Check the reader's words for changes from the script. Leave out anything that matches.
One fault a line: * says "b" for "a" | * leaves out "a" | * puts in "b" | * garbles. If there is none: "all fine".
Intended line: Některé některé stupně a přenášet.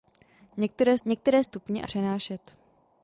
all fine